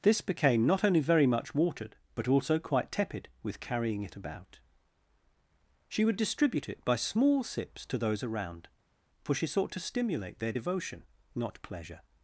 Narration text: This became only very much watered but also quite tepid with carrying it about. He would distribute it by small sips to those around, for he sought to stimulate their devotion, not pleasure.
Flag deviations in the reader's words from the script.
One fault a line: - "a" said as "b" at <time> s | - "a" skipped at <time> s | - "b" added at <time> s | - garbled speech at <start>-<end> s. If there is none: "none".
- "not" added at 0.7 s
- "He" said as "She" at 5.9 s
- "he" said as "she" at 9.3 s